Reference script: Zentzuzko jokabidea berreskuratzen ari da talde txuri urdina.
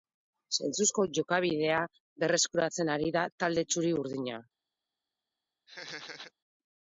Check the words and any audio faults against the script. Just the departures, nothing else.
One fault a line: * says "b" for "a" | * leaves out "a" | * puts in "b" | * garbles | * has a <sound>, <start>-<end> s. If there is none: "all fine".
* has a laugh, 5.7-6.3 s